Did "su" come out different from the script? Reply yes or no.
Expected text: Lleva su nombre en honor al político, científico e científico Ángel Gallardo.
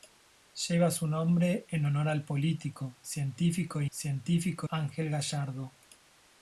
no